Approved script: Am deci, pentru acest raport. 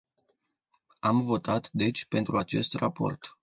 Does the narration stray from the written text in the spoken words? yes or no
yes